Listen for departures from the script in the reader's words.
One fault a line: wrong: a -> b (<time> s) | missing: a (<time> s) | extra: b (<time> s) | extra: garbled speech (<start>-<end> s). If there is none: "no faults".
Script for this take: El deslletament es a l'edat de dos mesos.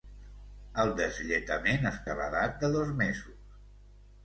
no faults